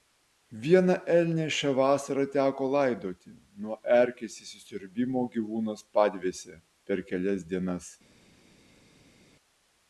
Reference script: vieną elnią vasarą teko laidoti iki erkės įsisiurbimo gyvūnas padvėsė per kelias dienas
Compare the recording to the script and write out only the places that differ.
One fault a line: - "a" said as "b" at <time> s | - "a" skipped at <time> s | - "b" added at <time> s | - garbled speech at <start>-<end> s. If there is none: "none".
- "šią" added at 1.6 s
- "iki" said as "nuo" at 3.6 s